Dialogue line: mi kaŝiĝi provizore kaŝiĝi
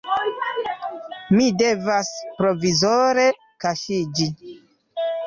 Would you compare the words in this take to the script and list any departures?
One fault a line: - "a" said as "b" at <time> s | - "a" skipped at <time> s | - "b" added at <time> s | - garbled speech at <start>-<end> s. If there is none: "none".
- "kaŝiĝi" said as "devas" at 1.6 s